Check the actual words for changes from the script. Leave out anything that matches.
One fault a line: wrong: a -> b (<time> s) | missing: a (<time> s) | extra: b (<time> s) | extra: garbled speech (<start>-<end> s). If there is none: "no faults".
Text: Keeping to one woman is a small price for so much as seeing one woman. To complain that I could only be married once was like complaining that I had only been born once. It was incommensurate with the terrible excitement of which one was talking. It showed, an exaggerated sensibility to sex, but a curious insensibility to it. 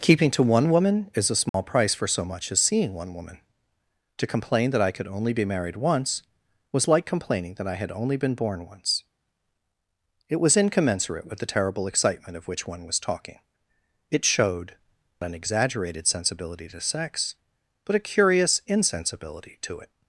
no faults